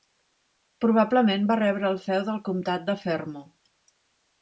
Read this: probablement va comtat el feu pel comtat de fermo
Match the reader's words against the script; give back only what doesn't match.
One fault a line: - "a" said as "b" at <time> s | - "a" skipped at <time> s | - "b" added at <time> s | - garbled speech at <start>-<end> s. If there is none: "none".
- "comtat" said as "rebre" at 1.6 s
- "pel" said as "del" at 2.3 s